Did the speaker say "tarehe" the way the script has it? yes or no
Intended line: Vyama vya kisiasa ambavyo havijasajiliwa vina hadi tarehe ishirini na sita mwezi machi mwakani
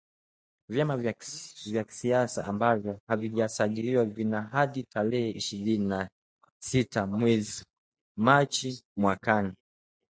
yes